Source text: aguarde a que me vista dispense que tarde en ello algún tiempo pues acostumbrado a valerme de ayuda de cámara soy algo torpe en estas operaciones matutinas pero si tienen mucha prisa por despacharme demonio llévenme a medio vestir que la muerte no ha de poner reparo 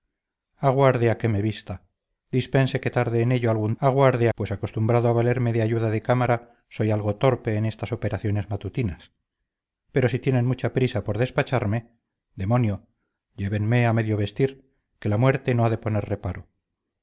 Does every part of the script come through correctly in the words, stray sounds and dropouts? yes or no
no